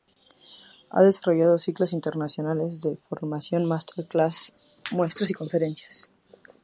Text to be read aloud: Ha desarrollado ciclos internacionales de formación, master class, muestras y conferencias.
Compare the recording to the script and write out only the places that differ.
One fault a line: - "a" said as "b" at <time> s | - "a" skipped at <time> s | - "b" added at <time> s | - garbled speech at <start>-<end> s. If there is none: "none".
none